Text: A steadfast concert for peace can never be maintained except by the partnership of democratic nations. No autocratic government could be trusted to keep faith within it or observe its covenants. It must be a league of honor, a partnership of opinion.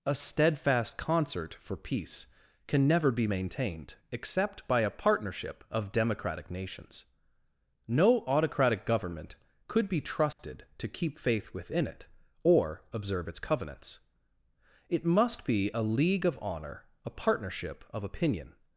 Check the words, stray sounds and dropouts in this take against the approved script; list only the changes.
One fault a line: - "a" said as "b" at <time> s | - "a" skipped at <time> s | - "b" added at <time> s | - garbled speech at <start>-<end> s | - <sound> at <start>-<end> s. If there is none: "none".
- "the" said as "a" at 4.8 s
- dropout at 10.3-10.4 s